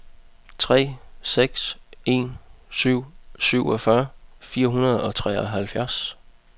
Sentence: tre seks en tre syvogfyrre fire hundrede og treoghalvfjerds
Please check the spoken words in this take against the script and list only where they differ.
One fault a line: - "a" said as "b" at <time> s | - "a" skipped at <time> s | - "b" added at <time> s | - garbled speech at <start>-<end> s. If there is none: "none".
- "tre" said as "syv" at 2.7 s